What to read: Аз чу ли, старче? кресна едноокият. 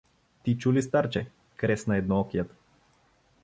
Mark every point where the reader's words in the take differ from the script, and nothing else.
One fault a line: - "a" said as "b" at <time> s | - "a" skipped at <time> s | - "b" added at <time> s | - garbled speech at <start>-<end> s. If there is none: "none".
- "Аз" said as "Ти" at 0.4 s